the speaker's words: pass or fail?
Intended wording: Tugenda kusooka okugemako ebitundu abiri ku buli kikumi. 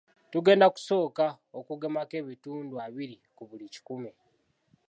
pass